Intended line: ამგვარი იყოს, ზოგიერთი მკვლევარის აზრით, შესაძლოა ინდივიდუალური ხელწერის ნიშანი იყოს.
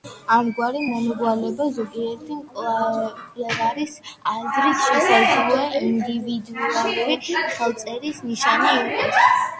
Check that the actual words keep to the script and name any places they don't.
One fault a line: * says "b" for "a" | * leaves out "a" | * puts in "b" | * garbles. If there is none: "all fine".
* says "მომრგვალება" for "იყოს"